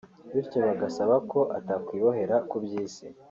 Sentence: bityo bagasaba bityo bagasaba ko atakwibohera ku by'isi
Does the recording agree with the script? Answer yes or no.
no